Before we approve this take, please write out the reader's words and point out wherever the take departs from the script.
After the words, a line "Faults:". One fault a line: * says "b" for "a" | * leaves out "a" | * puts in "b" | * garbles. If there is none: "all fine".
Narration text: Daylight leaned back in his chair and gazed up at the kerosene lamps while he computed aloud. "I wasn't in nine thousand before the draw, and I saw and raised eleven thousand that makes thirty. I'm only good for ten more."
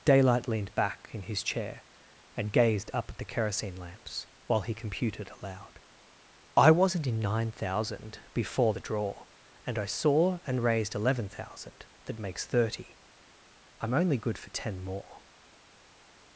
Daylight leaned back in his chair and gazed up at the kerosene lamps while he computed aloud. "I wasn't in nine thousand before the draw, and I saw and raised eleven thousand that makes thirty. I'm only good for ten more."
Faults:
all fine